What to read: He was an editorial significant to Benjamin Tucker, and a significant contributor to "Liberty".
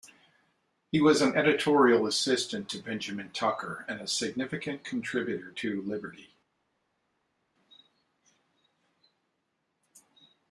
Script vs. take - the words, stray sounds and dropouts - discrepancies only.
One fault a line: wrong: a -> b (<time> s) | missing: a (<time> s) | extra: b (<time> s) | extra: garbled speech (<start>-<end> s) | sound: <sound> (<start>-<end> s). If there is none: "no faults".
wrong: significant -> assistant (2.1 s)